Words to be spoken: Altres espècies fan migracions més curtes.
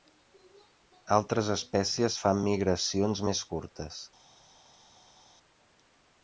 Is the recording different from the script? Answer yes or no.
no